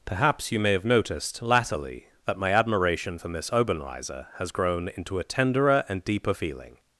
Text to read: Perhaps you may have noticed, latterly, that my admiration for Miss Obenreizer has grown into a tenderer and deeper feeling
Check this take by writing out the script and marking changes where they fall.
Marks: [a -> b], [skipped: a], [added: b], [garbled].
Perhaps you may have noticed, latterly, that my admiration for Miss Obenreizer has grown into a tenderer and deeper feeling